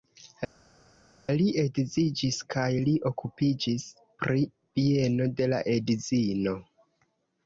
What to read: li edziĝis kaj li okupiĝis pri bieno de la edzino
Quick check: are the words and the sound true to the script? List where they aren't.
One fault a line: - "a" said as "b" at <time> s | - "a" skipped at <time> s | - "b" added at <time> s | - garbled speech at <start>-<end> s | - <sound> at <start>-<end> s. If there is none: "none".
none